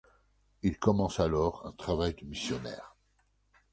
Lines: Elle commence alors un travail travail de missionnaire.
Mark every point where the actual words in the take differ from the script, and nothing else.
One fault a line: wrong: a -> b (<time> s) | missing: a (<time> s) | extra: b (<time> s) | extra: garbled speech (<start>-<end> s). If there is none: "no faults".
wrong: Elle -> Il (0.6 s)
missing: travail (2.1 s)